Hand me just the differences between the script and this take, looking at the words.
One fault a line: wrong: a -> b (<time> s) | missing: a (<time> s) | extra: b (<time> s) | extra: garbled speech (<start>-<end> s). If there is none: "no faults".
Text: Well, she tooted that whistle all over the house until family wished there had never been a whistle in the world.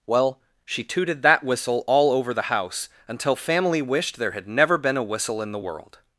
no faults